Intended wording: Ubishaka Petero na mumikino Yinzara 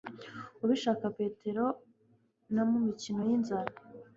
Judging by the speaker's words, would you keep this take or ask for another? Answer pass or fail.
pass